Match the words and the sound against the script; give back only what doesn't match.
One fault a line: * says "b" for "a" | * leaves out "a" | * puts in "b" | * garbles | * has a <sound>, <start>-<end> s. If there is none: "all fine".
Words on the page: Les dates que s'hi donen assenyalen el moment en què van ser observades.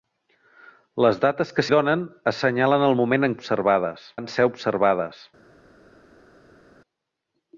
* leaves out "s'hi"
* says "observades" for "què"